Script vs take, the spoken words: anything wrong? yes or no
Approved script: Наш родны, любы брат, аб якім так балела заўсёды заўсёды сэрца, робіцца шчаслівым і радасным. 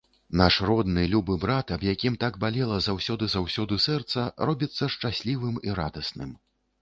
no